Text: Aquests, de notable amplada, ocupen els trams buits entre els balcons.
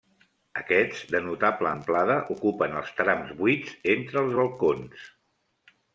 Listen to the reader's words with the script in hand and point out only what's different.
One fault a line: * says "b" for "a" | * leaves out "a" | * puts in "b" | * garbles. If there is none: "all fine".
all fine